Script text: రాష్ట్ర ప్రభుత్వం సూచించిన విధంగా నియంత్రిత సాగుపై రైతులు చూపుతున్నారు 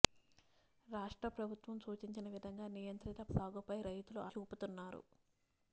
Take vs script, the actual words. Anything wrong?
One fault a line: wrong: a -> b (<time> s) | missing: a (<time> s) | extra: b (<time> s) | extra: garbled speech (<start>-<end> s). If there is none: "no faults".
no faults